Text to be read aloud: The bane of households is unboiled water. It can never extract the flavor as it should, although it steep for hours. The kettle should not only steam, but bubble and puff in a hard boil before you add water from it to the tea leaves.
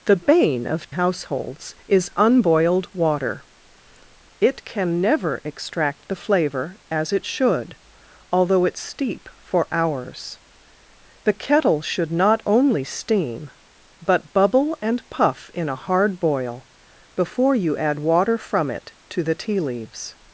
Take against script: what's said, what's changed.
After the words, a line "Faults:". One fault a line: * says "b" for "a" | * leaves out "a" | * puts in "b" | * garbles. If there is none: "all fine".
The bane of households is unboiled water. It can never extract the flavor as it should, although it steep for hours. The kettle should not only steam, but bubble and puff in a hard boil before you add water from it to the tea leaves.
Faults:
all fine